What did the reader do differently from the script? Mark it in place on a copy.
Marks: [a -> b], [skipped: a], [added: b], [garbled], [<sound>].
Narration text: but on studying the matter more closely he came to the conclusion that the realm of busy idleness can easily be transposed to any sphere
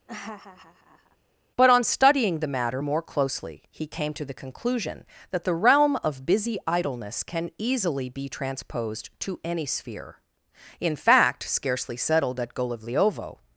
[laugh] but on studying the matter more closely he came to the conclusion that the realm of busy idleness can easily be transposed to any sphere [added: in fact scarcely settled at golovliovo]